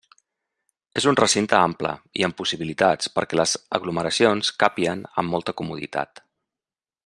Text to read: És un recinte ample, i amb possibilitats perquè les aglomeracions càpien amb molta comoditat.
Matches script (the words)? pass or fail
pass